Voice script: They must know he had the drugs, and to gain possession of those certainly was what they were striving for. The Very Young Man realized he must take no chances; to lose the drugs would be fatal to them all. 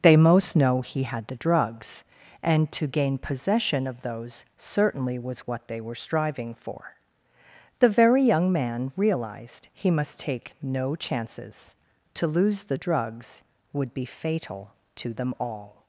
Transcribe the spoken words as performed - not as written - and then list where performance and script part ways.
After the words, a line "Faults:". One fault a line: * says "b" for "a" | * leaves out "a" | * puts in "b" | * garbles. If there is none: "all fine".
They most know he had the drugs, and to gain possession of those certainly was what they were striving for. The Very Young Man realized he must take no chances; to lose the drugs would be fatal to them all.
Faults:
* says "most" for "must"